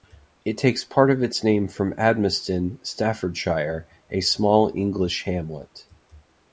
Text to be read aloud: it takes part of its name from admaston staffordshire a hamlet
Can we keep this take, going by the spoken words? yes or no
no